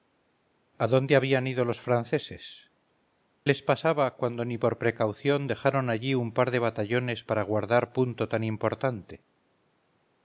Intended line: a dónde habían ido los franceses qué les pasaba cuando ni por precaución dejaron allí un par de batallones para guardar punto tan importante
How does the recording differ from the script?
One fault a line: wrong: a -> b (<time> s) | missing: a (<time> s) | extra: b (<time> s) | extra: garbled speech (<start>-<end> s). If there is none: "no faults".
missing: qué (2.7 s)